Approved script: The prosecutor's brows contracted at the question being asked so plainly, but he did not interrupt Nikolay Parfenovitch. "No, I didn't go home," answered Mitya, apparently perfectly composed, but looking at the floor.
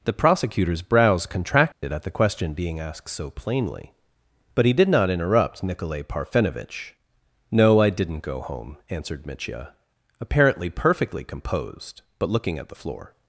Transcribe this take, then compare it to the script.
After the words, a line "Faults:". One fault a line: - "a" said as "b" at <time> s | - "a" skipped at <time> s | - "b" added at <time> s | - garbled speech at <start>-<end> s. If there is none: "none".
The prosecutor's brows contracted at the question being asked so plainly, but he did not interrupt Nikolay Parfenovitch. "No, I didn't go home," answered Mitya, apparently perfectly composed, but looking at the floor.
Faults:
none